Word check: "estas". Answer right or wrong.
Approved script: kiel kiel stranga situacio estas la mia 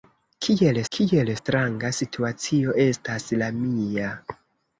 right